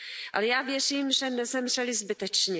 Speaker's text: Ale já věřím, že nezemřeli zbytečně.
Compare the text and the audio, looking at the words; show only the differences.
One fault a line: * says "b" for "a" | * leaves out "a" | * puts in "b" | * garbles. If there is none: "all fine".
all fine